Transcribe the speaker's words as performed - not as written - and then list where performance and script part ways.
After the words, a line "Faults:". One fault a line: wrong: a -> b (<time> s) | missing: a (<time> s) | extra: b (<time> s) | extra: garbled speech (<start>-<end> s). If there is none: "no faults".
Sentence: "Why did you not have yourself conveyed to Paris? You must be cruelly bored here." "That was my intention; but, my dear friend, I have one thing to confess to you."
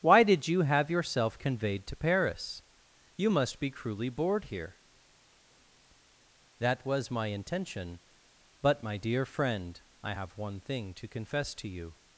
"Why did you have yourself conveyed to Paris? You must be cruelly bored here." "That was my intention; but, my dear friend, I have one thing to confess to you."
Faults:
missing: not (0.6 s)